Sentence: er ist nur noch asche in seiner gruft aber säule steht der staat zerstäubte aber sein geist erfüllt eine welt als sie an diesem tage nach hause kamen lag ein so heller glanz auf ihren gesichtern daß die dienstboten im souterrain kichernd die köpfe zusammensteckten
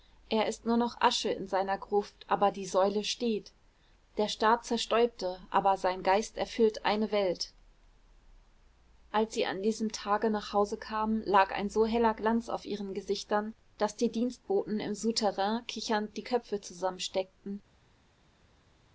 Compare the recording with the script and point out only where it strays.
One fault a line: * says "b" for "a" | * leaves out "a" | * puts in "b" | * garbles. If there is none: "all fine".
* puts in "die"